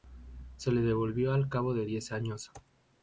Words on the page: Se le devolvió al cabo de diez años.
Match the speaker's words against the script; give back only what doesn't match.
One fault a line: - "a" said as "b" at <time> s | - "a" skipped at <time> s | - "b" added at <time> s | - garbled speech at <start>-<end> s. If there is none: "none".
none